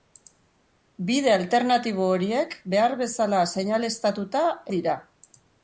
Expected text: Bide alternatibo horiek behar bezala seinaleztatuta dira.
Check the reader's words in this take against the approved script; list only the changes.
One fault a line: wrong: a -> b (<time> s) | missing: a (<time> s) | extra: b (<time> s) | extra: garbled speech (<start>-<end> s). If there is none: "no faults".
no faults